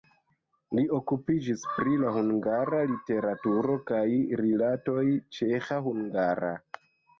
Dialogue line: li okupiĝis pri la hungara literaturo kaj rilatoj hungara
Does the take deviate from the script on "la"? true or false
false